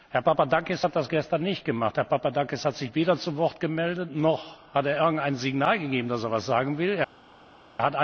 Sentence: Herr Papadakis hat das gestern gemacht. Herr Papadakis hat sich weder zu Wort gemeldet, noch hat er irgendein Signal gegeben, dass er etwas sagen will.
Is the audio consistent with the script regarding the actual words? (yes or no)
no